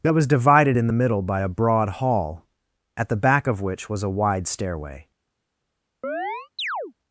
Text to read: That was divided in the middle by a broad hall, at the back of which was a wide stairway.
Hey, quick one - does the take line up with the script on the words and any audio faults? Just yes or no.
no